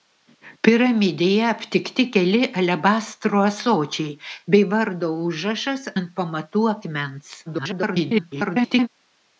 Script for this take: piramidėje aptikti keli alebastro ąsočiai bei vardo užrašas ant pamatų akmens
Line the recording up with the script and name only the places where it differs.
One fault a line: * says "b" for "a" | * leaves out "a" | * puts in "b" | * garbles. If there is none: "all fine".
* garbles